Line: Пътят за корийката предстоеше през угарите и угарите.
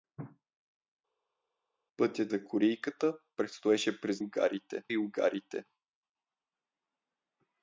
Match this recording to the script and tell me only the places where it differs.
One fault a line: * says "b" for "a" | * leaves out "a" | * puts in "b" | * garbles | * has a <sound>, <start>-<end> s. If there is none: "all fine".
all fine